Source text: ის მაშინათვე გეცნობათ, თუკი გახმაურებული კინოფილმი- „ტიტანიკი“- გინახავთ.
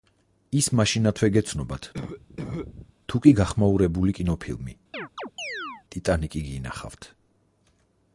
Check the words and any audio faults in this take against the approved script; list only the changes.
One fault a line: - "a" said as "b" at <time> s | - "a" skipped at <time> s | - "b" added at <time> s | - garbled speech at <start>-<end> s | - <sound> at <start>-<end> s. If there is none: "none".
- cough at 1.9-2.9 s
- chirp at 4.9-5.8 s